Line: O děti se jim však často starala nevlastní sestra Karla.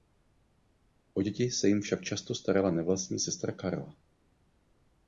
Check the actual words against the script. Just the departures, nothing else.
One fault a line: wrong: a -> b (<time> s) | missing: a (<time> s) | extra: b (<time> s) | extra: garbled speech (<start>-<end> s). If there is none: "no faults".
no faults